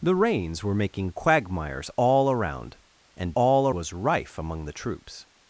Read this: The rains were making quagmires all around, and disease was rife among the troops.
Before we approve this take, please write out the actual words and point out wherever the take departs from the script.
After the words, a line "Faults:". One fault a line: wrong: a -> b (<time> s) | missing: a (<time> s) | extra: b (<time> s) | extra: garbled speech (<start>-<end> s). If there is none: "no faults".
The rains were making quagmires all around, and all was rife among the troops.
Faults:
wrong: disease -> all (3.3 s)